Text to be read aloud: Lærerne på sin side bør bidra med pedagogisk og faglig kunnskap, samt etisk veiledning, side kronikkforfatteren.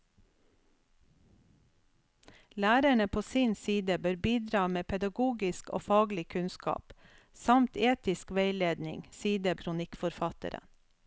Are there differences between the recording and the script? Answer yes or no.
no